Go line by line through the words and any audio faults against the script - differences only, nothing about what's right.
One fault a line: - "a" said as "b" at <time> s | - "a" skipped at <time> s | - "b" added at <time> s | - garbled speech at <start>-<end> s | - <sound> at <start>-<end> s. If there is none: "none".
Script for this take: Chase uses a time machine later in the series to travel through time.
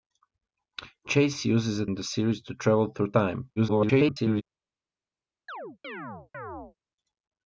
- "time machine later" skipped at 1.9 s
- garbled speech at 3.6-4.4 s
- chirp at 5.5-6.8 s